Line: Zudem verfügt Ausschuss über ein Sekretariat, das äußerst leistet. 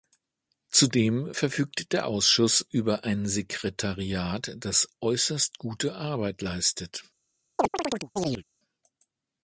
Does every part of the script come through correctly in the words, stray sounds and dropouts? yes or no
no